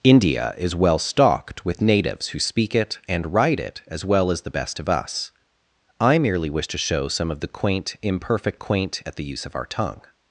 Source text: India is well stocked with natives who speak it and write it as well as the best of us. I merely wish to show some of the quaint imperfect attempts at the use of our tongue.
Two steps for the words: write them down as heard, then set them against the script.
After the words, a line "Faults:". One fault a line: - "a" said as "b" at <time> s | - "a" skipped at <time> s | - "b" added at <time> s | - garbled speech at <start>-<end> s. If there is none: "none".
India is well stocked with natives who speak it and write it as well as the best of us. I merely wish to show some of the quaint imperfect quaint at the use of our tongue.
Faults:
- "attempts" said as "quaint" at 8.5 s